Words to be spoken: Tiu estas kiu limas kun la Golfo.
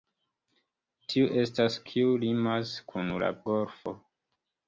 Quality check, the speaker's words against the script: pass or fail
pass